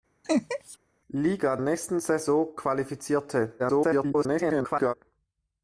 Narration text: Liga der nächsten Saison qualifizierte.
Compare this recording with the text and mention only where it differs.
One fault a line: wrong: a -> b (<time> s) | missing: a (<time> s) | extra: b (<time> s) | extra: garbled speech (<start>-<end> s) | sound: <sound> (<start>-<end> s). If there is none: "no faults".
sound: laugh (0.2-0.8 s)
missing: der (1.6 s)
extra: garbled speech (3.6-4.9 s)